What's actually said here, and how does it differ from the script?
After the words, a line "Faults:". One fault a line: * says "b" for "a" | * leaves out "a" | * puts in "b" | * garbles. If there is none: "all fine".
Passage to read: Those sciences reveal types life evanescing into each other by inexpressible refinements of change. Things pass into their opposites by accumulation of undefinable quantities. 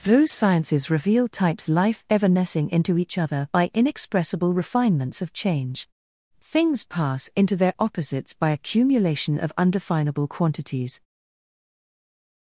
Those sciences reveal types life evanescing into each other by inexpressible refinements of change. Things pass into their opposites by accumulation of undefinable quantities.
Faults:
all fine